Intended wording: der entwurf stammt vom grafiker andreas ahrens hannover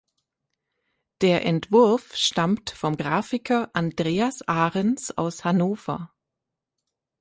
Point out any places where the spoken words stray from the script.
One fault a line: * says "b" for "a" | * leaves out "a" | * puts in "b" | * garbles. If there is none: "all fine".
* puts in "aus"